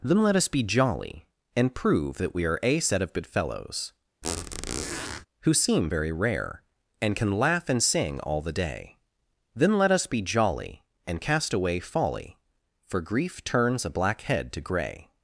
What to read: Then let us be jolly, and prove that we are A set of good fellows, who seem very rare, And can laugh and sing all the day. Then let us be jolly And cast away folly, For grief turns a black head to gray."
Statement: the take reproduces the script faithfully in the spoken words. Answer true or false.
true